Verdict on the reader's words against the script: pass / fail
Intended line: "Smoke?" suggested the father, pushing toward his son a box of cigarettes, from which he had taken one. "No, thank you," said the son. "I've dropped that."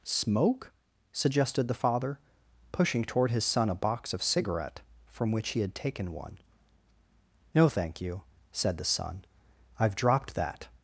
fail